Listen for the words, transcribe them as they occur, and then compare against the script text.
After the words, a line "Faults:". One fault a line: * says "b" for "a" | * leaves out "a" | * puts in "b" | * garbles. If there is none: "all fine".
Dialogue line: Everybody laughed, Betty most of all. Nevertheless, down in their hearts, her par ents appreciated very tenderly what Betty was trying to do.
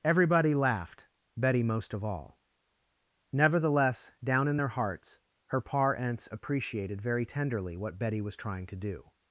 Everybody laughed, Betty most of all. Nevertheless, down in their hearts, her par ents appreciated very tenderly what Betty was trying to do.
Faults:
all fine